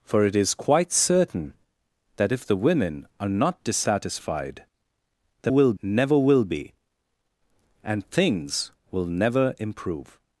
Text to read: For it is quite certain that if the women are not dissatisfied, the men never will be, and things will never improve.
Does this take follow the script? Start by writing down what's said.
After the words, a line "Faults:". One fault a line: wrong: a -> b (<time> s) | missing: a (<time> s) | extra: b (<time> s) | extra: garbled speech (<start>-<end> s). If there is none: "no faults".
For it is quite certain that if the women are not dissatisfied, the will never will be, and things will never improve.
Faults:
wrong: men -> will (5.5 s)